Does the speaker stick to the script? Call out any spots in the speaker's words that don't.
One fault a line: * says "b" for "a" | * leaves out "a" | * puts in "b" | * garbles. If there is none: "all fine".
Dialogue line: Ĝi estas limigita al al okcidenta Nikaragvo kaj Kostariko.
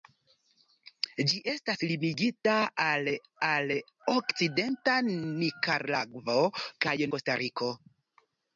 all fine